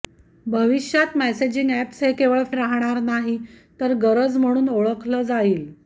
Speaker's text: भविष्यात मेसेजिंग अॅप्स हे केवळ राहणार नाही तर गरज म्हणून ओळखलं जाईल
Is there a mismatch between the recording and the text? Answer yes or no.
no